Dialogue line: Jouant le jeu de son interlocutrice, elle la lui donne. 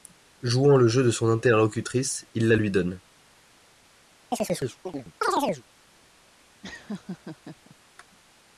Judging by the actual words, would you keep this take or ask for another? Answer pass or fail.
fail